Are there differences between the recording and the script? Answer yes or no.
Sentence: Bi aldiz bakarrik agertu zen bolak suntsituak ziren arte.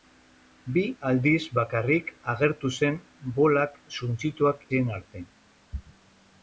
no